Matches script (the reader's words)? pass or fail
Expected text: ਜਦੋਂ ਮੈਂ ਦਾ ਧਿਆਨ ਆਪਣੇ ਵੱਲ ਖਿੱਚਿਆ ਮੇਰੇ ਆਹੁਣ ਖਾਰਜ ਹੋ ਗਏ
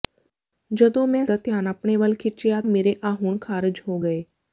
pass